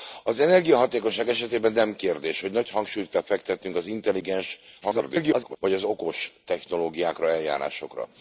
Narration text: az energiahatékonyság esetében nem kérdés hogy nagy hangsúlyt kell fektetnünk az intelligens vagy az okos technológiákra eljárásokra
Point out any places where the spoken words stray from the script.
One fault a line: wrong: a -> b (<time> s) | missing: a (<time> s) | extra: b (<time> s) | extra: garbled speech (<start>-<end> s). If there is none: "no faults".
extra: garbled speech (4.8-5.6 s)